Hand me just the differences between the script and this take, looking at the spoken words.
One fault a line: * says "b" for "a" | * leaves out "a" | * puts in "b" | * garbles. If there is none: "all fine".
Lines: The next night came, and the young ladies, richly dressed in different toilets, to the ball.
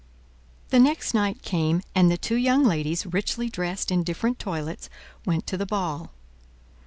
* puts in "two"
* puts in "went"